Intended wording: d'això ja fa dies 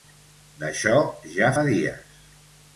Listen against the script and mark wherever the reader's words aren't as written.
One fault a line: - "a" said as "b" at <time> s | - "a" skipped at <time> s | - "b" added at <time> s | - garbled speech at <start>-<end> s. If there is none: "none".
none